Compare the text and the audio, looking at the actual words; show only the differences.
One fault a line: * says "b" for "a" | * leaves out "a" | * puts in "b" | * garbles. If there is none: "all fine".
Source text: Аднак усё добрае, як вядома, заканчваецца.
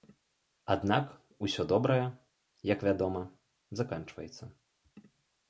all fine